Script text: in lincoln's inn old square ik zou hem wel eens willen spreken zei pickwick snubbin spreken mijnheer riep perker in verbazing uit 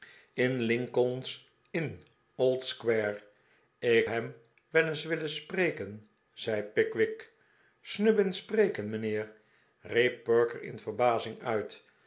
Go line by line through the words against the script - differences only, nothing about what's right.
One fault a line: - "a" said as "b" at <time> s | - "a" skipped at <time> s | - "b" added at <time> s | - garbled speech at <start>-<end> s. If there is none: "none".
- "zou" skipped at 4.1 s